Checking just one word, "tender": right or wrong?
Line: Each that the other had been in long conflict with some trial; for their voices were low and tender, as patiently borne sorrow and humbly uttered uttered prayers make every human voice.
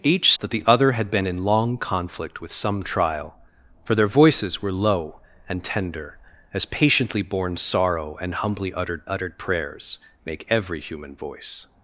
right